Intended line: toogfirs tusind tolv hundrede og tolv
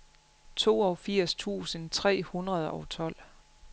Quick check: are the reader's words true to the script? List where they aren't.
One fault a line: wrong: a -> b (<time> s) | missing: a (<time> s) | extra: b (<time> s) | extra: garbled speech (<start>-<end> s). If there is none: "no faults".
wrong: tolv -> tre (1.9 s)